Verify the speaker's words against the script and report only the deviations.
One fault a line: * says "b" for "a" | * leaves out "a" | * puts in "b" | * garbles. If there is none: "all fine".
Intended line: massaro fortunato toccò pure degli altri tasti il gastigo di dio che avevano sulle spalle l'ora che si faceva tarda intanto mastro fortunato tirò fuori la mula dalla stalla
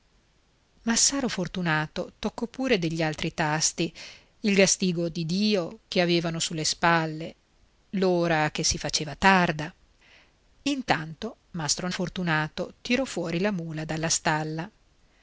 all fine